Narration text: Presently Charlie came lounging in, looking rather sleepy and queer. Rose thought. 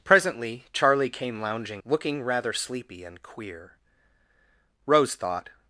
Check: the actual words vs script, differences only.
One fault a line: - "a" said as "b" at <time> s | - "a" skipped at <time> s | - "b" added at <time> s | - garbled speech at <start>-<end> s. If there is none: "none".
- "in" skipped at 1.8 s